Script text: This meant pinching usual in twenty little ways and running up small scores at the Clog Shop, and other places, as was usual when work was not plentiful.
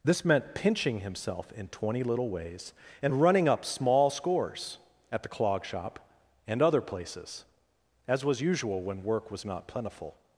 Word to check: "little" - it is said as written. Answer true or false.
true